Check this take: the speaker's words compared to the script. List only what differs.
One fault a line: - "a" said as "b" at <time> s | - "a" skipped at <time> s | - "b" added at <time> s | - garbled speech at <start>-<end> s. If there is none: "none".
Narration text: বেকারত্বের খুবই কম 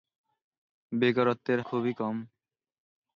none